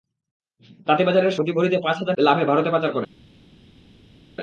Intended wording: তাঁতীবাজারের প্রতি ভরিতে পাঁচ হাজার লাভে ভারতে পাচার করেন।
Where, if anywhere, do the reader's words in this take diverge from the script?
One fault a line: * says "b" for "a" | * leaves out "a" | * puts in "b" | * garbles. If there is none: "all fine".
all fine